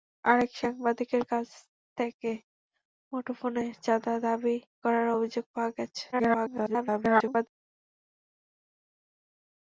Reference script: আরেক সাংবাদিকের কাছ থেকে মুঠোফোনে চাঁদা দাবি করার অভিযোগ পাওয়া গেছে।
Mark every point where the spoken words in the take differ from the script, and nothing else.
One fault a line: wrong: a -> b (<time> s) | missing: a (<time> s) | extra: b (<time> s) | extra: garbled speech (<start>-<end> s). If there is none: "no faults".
extra: garbled speech (6.1-7.5 s)